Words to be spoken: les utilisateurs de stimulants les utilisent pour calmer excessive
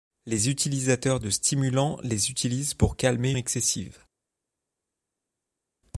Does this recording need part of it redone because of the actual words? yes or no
no